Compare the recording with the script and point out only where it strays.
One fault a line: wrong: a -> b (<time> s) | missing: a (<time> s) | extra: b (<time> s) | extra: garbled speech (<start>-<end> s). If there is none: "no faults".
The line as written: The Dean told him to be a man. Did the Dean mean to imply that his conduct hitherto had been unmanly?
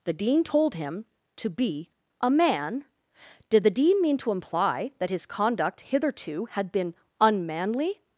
no faults